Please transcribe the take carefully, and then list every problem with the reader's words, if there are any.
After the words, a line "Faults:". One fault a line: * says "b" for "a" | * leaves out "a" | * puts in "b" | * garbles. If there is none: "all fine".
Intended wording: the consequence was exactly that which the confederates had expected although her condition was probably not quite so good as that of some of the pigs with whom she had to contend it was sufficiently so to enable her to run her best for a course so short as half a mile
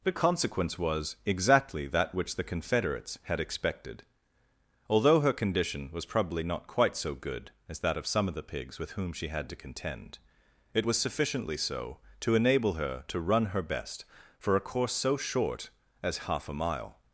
the consequence was exactly that which the confederates had expected although her condition was probably not quite so good as that of some of the pigs with whom she had to contend it was sufficiently so to enable her to run her best for a course so short as half a mile
Faults:
all fine